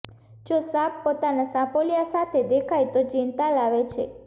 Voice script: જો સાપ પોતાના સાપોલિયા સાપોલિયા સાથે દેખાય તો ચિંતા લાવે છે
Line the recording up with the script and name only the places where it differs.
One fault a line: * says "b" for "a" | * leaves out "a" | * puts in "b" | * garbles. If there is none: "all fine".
* leaves out "સાપોલિયા"